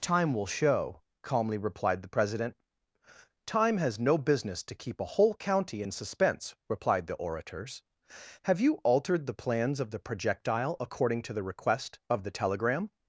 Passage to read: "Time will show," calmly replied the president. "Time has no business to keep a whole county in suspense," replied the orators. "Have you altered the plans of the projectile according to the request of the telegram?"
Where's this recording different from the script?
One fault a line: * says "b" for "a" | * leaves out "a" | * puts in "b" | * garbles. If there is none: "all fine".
all fine